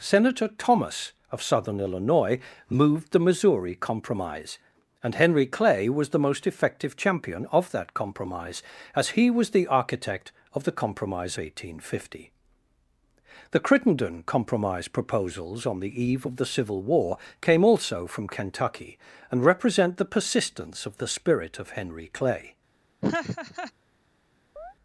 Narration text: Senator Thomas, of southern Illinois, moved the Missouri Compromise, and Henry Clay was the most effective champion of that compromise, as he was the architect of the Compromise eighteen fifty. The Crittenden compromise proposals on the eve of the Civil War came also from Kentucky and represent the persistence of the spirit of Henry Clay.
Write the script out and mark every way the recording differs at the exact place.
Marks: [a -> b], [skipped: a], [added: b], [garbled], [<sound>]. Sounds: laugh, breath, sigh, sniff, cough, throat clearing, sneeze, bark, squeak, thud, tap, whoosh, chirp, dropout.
Senator Thomas, of southern Illinois, moved the Missouri Compromise, and Henry Clay was the most effective champion of that compromise, as he was the architect of the Compromise eighteen fifty. The Crittenden compromise proposals on the eve of the Civil War came also from Kentucky and represent the persistence of the spirit of Henry Clay. [laugh] [chirp]